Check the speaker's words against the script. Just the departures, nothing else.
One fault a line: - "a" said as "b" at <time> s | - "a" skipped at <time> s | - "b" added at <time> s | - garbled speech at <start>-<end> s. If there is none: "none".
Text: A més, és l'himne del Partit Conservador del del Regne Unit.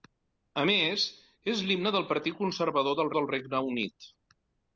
none